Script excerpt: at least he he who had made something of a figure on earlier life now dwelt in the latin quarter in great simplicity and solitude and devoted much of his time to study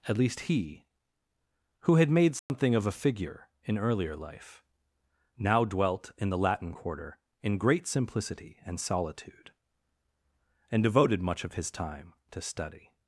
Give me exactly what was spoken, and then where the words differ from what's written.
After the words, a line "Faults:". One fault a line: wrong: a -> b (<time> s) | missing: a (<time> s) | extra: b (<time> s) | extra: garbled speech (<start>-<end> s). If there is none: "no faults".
at least he who had made something of a figure in earlier life now dwelt in the latin quarter in great simplicity and solitude and devoted much of his time to study
Faults:
missing: he (0.8 s)
wrong: on -> in (3.6 s)